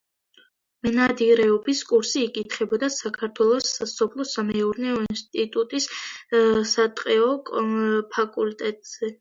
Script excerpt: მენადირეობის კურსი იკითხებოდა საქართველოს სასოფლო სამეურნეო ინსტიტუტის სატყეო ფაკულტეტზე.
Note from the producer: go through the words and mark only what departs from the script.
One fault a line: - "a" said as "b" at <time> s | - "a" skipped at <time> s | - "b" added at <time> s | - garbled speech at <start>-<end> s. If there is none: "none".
none